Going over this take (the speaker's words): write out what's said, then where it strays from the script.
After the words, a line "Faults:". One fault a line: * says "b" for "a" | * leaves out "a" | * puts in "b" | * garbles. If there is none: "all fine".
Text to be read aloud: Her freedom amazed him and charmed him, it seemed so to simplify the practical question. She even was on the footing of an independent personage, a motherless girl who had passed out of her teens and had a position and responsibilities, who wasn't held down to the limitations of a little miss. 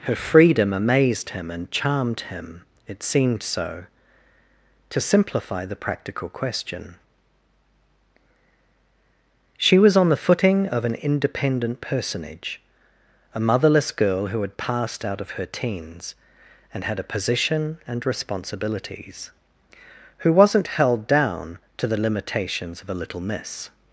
Her freedom amazed him and charmed him, it seemed so to simplify the practical question. She was on the footing of an independent personage, a motherless girl who had passed out of her teens and had a position and responsibilities, who wasn't held down to the limitations of a little miss.
Faults:
* leaves out "even"